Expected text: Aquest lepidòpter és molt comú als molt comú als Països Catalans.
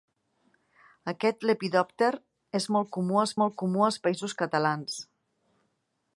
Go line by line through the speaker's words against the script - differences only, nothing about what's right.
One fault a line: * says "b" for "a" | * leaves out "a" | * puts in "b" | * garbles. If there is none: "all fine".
all fine